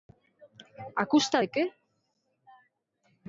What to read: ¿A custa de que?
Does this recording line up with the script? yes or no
yes